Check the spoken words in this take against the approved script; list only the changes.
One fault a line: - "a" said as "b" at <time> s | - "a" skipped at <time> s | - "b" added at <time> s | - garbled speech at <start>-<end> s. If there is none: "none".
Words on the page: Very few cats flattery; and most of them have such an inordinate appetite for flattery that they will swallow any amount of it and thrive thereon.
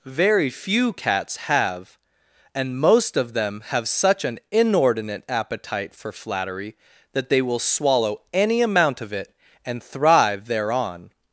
- "flattery" said as "have" at 1.4 s